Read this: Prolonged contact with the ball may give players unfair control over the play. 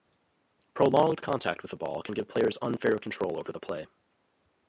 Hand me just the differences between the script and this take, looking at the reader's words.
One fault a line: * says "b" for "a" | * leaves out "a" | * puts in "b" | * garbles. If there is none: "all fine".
* says "can" for "may"